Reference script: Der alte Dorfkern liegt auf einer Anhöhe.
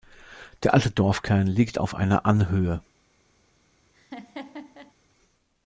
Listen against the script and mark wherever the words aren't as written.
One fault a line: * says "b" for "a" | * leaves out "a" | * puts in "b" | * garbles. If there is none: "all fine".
all fine